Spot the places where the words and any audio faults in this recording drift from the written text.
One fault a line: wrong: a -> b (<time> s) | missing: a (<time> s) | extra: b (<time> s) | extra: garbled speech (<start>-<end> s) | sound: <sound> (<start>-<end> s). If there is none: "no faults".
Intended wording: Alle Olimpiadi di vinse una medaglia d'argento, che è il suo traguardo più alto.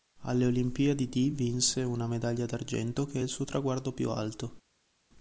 no faults